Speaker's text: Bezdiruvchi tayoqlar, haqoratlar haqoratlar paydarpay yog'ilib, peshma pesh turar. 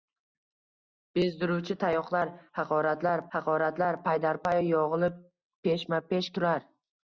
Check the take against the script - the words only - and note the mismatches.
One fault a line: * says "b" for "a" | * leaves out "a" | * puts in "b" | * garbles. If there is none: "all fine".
all fine